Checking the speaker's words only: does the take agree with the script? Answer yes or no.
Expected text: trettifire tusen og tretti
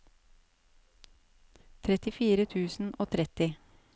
yes